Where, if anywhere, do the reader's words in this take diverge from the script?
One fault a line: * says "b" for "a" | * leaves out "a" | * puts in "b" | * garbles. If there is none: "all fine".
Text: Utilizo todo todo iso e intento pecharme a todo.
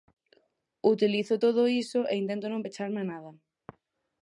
* leaves out "todo"
* puts in "non"
* says "nada" for "todo"